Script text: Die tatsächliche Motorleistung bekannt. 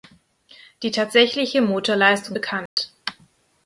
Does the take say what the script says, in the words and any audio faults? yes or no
no